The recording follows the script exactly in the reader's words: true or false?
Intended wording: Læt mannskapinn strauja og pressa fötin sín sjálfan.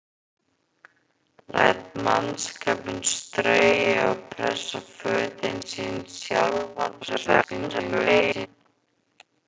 false